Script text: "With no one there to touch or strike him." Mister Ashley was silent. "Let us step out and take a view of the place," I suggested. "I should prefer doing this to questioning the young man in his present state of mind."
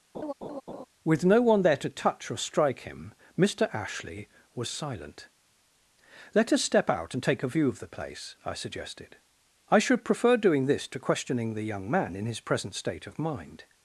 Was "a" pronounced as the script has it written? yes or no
yes